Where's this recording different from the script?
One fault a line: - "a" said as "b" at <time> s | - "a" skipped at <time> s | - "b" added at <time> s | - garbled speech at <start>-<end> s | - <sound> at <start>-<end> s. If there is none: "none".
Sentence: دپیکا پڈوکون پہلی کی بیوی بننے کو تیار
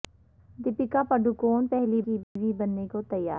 - dropout at 2.2-2.4 s